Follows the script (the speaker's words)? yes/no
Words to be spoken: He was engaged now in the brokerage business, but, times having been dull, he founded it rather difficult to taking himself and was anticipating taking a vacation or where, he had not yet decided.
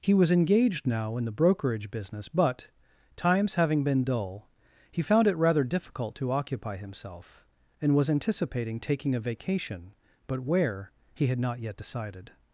no